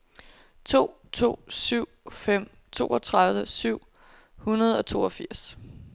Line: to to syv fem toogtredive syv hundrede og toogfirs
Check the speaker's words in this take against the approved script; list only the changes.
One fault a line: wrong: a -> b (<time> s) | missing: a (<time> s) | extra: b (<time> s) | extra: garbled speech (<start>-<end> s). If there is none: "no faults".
no faults